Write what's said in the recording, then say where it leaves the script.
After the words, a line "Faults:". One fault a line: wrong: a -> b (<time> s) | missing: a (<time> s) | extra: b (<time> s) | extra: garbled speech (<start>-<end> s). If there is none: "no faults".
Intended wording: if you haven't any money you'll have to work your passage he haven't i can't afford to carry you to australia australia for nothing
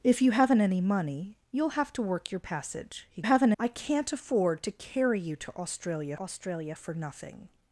if you haven't any money you'll have to work your passage he haven't i can't afford to carry you to australia australia for nothing
Faults:
no faults